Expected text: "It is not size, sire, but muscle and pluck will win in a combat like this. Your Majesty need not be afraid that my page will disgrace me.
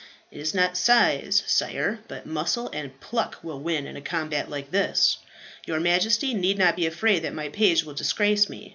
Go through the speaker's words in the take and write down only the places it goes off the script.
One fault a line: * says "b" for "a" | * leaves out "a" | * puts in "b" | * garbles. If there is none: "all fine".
all fine